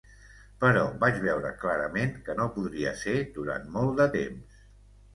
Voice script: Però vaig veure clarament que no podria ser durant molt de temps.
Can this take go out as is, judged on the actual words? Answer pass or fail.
pass